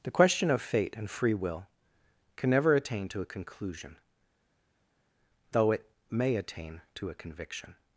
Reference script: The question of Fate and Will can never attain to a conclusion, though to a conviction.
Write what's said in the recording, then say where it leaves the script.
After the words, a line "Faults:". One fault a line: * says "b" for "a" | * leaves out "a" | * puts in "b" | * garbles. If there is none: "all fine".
The question of Fate and Free Will can never attain to a conclusion, though it may attain to a conviction.
Faults:
* puts in "Free"
* puts in "it may attain"